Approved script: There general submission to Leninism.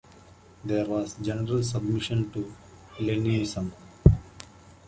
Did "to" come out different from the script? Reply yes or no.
no